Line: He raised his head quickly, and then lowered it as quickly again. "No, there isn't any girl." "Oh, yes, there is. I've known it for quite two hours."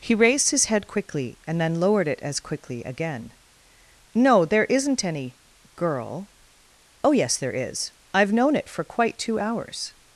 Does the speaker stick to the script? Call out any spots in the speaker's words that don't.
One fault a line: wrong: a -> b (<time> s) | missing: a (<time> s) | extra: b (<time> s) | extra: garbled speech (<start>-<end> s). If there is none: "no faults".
no faults